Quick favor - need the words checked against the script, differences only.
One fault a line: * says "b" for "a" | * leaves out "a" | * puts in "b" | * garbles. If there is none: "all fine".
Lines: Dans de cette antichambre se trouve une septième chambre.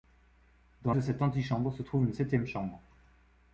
all fine